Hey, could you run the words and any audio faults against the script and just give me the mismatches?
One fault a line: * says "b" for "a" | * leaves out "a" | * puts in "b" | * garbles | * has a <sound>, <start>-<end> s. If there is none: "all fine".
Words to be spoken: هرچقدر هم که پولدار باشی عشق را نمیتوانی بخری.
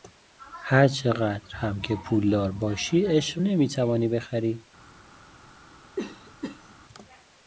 * leaves out "را"
* has a cough, 6.0-6.8 s